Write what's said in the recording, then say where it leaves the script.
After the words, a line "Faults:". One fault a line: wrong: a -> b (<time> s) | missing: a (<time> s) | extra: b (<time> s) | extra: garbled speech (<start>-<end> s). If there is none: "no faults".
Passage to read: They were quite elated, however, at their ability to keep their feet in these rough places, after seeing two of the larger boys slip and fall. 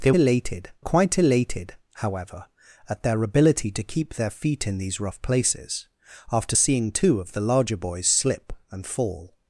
They elated quite elated, however, at their ability to keep their feet in these rough places, after seeing two of the larger boys slip and fall.
Faults:
wrong: were -> elated (0.1 s)